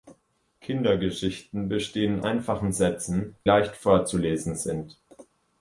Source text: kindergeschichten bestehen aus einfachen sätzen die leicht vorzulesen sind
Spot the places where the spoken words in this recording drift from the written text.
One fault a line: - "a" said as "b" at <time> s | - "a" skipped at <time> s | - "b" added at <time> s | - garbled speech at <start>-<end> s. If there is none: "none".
- "aus" skipped at 2.2 s
- "die" skipped at 3.4 s